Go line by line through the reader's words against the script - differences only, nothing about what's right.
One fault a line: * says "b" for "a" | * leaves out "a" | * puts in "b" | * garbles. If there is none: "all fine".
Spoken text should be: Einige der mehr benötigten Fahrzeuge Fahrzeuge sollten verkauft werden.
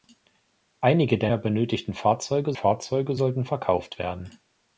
all fine